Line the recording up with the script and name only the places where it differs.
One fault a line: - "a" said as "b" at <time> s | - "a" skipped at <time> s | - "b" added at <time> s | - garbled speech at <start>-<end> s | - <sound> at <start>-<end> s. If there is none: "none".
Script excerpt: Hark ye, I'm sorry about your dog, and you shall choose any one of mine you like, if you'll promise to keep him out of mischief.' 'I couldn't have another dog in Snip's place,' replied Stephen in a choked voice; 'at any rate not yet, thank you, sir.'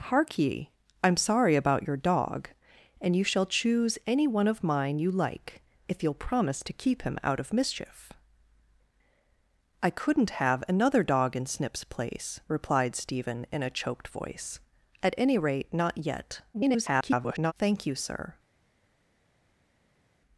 - garbled speech at 16.5-17.5 s